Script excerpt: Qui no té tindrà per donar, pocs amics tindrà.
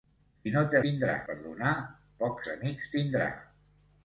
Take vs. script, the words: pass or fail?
pass